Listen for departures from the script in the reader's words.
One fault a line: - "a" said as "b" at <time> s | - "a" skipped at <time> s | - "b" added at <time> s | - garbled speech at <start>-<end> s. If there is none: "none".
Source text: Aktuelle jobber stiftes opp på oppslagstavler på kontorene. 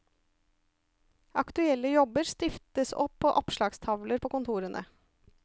none